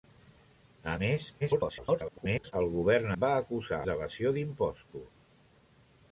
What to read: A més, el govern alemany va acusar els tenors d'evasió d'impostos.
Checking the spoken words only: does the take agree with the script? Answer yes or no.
no